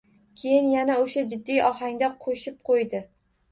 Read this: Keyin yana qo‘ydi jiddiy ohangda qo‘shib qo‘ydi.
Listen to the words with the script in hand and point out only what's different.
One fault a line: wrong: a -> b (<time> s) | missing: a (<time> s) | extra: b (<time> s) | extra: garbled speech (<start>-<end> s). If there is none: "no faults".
wrong: qo‘ydi -> o‘sha (1.0 s)